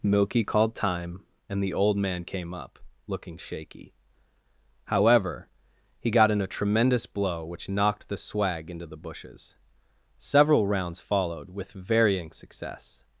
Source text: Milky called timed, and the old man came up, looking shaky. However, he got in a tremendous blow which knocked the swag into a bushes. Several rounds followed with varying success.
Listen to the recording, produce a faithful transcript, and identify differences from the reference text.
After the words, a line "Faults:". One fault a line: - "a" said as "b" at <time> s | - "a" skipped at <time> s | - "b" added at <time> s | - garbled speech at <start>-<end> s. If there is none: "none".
Milky called time, and the old man came up, looking shaky. However, he got in a tremendous blow which knocked the swag into the bushes. Several rounds followed with varying success.
Faults:
- "timed" said as "time" at 0.7 s
- "a" said as "the" at 8.9 s